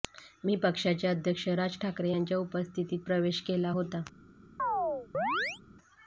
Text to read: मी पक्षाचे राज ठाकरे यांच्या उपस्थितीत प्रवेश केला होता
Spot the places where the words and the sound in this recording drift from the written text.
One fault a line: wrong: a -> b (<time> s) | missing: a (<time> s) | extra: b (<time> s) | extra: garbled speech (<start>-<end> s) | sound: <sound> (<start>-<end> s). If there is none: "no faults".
extra: अध्यक्ष (1.1 s)
sound: chirp (4.6-5.6 s)